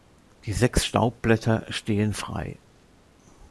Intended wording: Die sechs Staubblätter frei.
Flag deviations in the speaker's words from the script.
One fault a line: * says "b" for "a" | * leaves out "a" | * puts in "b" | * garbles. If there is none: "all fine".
* puts in "stehen"